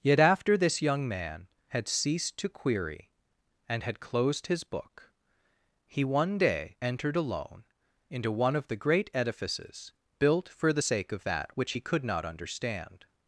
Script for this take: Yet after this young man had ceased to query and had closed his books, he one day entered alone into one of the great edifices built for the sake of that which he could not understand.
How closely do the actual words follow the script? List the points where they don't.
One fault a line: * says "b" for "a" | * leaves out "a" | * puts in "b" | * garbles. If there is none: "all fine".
* says "book" for "books"